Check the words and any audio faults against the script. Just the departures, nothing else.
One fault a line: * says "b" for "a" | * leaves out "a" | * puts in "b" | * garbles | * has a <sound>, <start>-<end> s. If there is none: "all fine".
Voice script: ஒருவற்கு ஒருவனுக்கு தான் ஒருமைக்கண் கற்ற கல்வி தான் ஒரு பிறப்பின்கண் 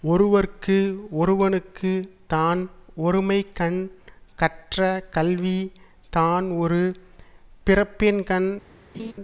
* has a laugh, 8.9-9.1 s